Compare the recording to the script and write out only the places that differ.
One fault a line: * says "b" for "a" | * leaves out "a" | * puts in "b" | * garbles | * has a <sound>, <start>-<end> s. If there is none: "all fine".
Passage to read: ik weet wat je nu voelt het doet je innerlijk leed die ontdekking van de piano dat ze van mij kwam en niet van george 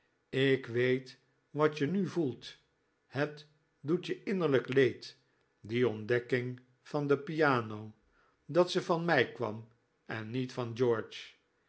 all fine